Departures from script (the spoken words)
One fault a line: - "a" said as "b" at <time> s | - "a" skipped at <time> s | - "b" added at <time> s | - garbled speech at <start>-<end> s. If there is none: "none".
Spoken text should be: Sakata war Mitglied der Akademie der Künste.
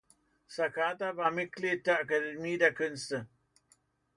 none